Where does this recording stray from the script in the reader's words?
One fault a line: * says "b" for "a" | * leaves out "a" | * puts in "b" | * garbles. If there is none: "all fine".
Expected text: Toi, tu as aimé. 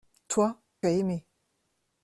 * leaves out "tu"